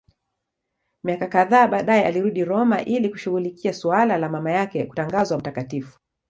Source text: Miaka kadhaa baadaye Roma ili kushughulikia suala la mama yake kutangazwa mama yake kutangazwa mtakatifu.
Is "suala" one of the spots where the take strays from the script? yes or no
no